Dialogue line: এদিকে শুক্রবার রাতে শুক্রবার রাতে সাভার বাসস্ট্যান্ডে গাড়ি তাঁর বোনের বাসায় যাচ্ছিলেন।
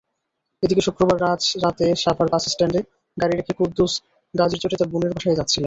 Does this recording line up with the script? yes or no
no